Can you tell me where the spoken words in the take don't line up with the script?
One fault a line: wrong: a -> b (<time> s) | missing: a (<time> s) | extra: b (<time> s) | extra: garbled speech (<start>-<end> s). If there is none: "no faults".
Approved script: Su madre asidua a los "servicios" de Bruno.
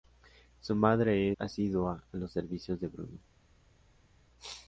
no faults